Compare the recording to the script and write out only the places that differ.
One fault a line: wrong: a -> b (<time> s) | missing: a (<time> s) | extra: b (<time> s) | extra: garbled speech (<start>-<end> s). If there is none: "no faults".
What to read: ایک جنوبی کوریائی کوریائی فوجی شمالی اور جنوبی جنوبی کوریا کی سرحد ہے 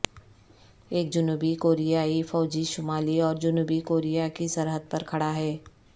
missing: کوریائی (2.2 s)
missing: جنوبی (3.8 s)
extra: پر کھڑا (4.9 s)